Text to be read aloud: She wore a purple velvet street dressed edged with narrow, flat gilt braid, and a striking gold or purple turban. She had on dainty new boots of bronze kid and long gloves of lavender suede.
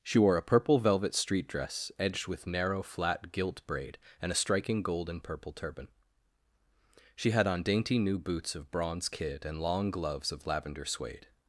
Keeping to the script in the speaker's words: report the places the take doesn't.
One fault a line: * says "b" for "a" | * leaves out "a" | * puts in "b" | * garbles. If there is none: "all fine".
* says "dress" for "dressed"
* says "and" for "or"